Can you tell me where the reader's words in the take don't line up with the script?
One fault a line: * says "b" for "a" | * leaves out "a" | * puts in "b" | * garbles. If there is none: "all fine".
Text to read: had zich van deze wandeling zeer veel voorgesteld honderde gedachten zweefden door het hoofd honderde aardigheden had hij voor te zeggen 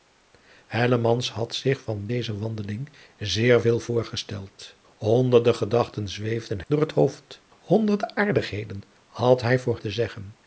all fine